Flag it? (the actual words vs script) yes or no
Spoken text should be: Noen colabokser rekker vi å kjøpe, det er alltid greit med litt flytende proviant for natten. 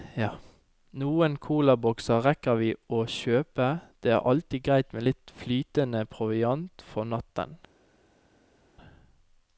no